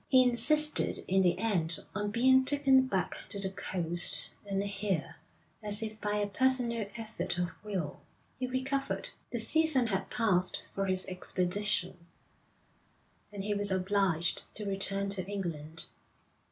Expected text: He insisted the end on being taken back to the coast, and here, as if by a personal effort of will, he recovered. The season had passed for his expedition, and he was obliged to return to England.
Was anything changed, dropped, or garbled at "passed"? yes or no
no